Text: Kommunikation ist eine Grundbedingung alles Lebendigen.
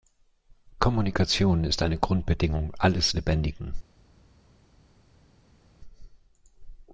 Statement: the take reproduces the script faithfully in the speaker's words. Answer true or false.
true